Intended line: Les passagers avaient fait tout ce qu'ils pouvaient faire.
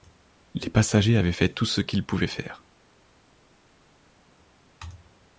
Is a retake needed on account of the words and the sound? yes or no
no